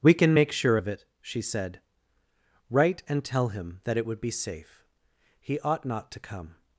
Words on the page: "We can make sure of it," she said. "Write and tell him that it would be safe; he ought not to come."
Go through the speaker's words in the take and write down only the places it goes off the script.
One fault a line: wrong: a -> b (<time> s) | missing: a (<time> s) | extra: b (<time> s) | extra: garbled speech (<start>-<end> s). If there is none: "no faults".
no faults